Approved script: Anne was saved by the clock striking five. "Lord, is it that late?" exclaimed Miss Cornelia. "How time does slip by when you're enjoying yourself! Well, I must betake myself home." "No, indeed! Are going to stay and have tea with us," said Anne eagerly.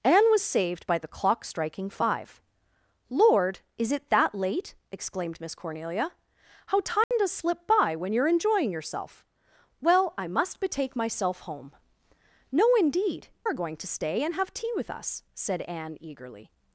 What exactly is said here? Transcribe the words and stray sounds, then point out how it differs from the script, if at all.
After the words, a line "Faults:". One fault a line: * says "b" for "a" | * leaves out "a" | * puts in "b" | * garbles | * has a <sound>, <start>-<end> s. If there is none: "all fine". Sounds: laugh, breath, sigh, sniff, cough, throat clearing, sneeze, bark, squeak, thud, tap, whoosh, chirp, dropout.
Anne was saved by the clock striking five. "Lord, is it that late?" exclaimed Miss Cornelia. "How time does slip by when you're enjoying yourself! Well, I must betake myself home." "No, indeed! Are going to stay and have tea with us," said Anne eagerly.
Faults:
* has a dropout, 7.0-7.1 s